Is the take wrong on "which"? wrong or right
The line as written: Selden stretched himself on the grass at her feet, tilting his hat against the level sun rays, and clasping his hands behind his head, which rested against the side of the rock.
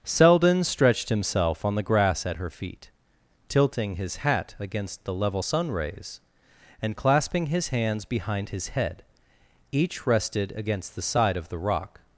wrong